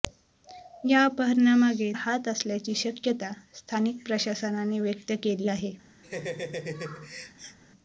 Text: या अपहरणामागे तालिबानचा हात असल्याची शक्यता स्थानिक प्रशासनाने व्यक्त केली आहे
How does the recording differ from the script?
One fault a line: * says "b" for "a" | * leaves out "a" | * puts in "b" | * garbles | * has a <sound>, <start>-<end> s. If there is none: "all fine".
* leaves out "तालिबानचा"
* has a laugh, 6.0-7.6 s